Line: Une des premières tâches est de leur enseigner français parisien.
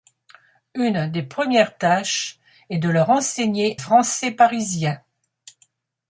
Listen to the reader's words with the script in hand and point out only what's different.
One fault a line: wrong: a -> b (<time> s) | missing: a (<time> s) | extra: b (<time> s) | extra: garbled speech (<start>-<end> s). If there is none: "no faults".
no faults